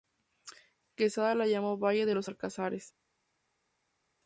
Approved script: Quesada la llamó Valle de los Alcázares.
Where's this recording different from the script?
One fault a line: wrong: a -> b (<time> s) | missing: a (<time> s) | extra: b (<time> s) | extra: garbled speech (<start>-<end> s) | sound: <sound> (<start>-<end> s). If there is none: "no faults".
no faults